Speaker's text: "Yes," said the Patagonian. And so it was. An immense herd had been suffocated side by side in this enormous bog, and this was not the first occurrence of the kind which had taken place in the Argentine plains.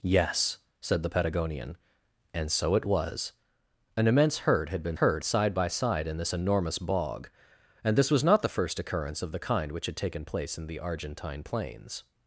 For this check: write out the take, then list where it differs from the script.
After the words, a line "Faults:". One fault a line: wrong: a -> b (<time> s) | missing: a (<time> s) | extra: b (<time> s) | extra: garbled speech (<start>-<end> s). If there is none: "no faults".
"Yes," said the Patagonian. And so it was. An immense herd had been herd side by side in this enormous bog, and this was not the first occurrence of the kind which had taken place in the Argentine plains.
Faults:
wrong: suffocated -> herd (4.9 s)